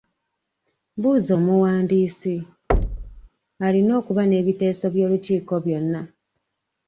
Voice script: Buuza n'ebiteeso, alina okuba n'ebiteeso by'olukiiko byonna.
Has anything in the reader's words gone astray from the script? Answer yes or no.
yes